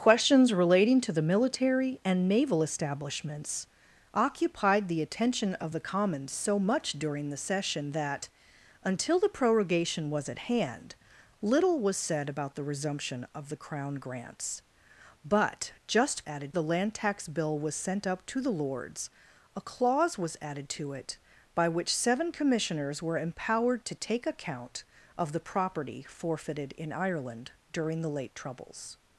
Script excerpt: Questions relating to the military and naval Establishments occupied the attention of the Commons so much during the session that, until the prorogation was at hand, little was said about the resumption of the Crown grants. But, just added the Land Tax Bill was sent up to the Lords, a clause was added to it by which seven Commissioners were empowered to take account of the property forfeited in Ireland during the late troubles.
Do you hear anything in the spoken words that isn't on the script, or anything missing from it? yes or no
no